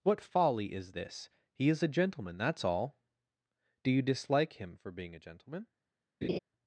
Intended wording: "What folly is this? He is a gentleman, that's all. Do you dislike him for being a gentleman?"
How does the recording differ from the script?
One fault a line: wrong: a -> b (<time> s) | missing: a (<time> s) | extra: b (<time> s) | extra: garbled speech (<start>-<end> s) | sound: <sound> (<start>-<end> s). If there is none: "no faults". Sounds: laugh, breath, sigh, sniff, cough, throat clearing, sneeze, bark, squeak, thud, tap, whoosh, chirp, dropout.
sound: laugh (6.2-6.4 s)